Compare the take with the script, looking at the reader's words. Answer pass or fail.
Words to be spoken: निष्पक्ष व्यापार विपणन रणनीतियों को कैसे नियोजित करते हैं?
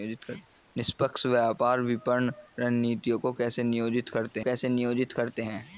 fail